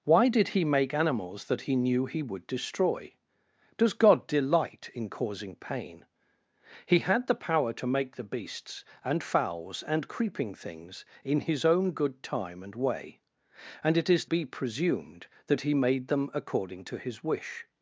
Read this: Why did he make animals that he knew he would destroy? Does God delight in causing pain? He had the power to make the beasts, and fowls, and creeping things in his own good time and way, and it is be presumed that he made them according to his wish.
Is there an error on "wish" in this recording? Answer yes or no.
no